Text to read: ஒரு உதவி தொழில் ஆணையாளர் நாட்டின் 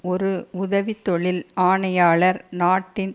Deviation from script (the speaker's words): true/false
false